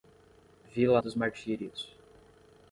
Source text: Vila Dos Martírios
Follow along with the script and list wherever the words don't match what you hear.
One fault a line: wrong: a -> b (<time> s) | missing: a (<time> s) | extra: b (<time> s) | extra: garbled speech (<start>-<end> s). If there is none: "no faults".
no faults